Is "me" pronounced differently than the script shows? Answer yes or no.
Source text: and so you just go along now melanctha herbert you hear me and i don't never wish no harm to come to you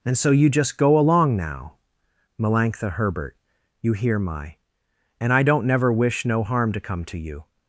yes